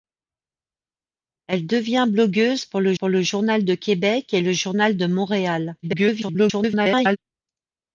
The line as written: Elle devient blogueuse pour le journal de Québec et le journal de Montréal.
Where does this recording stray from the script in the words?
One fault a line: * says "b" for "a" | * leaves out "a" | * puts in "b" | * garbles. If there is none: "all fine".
* puts in "pour le"
* garbles